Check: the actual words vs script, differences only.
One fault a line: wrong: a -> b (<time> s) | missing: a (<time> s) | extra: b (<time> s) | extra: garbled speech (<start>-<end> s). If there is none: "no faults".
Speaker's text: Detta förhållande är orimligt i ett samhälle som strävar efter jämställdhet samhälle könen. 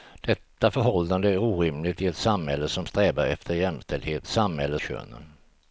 no faults